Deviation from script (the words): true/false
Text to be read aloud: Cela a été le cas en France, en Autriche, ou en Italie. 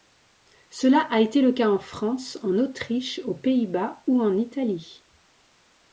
true